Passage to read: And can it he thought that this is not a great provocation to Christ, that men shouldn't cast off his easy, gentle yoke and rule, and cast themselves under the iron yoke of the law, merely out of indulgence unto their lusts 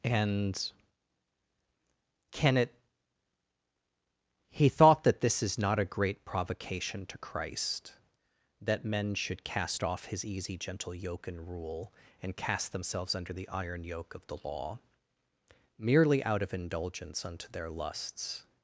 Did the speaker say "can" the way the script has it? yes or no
yes